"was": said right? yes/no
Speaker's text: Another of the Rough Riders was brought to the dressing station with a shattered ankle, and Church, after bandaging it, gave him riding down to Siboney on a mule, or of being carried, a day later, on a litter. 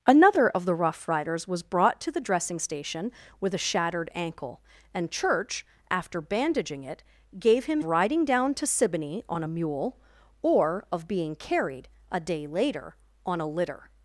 yes